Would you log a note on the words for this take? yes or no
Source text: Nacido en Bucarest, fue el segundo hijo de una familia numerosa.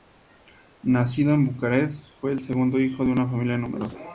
no